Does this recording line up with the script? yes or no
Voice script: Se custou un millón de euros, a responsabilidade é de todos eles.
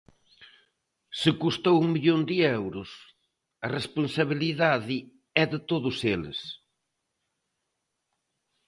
yes